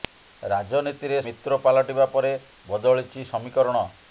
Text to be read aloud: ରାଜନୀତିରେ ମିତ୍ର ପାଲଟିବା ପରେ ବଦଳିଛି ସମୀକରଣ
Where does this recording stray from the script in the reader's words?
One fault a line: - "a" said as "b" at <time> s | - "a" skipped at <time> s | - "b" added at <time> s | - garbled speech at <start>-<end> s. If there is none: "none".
none